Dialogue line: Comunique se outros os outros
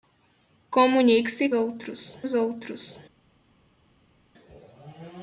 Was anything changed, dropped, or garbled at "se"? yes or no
no